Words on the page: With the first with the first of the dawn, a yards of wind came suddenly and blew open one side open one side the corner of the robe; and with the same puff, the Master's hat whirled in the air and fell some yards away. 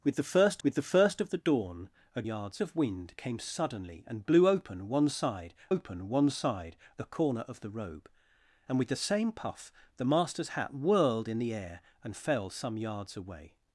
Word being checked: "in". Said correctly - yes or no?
yes